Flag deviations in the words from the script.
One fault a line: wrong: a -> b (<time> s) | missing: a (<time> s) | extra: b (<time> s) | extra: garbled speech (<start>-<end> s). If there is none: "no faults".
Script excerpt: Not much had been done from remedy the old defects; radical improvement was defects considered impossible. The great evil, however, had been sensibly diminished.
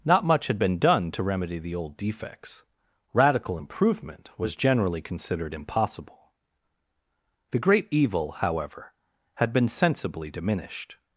wrong: from -> to (1.1 s)
wrong: defects -> generally (4.5 s)